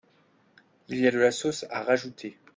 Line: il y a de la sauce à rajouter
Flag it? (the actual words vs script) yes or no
no